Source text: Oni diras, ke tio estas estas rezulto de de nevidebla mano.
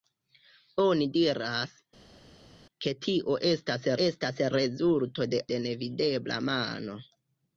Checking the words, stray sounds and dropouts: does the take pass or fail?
pass